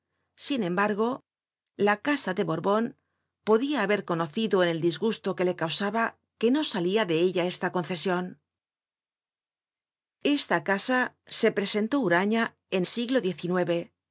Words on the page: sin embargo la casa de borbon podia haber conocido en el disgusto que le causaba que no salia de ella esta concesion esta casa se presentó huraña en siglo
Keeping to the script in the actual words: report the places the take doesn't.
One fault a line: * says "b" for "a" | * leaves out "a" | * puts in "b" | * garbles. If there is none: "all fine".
all fine